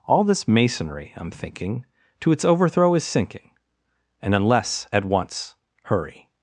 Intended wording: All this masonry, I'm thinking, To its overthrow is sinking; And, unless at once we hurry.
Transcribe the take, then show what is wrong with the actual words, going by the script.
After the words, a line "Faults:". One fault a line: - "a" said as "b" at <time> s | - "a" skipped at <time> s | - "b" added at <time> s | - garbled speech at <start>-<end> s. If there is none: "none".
All this masonry, I'm thinking, To its overthrow is sinking; And, unless at once hurry.
Faults:
- "we" skipped at 5.5 s